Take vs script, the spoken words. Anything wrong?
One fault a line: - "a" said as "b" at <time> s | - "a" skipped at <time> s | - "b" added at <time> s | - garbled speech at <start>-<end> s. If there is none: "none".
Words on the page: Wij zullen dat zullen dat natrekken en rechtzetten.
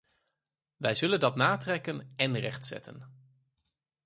- "zullen dat" skipped at 1.4 s